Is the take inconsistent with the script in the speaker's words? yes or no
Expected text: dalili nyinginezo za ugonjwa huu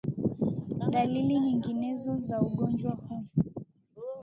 no